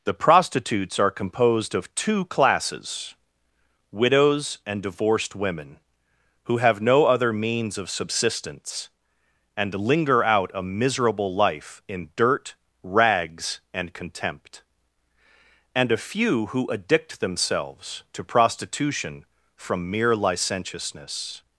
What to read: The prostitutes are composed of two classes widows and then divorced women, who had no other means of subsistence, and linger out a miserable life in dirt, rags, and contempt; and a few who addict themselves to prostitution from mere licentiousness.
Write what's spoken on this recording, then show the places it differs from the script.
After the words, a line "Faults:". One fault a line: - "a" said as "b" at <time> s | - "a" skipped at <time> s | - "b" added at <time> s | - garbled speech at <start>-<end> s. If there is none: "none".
The prostitutes are composed of two classes widows and divorced women, who have no other means of subsistence, and linger out a miserable life in dirt, rags, and contempt; and a few who addict themselves to prostitution from mere licentiousness.
Faults:
- "then" skipped at 4.8 s
- "had" said as "have" at 6.6 s